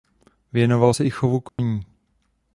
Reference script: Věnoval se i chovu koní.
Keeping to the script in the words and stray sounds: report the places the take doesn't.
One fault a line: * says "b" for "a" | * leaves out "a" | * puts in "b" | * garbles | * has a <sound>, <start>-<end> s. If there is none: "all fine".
* has a dropout, 1.5-1.6 s